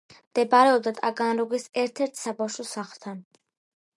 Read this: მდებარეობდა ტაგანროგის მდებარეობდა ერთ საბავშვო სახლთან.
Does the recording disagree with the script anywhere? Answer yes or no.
yes